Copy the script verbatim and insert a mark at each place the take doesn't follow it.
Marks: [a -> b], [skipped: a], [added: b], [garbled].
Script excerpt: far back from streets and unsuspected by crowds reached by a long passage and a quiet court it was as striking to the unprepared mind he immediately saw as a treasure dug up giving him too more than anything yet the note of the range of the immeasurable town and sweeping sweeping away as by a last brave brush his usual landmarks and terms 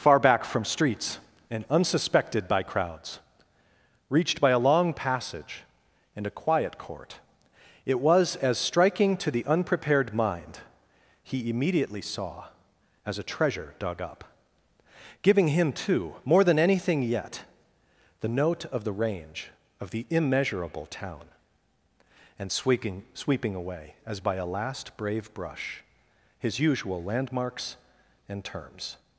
far back from streets and unsuspected by crowds reached by a long passage and a quiet court it was as striking to the unprepared mind he immediately saw as a treasure dug up giving him too more than anything yet the note of the range of the immeasurable town and sweeping sweeping away as by a last brave brush his usual landmarks and terms